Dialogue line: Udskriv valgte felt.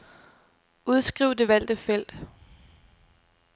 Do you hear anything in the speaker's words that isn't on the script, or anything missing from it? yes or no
yes